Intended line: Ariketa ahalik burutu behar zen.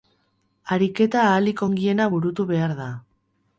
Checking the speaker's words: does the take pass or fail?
fail